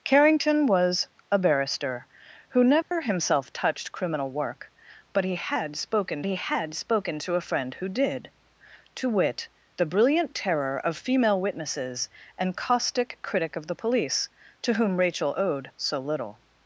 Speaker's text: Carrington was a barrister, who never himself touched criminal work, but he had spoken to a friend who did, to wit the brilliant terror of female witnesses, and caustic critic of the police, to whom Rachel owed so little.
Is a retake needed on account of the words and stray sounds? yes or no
yes